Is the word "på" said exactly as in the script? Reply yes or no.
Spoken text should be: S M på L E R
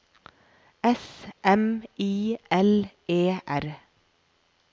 no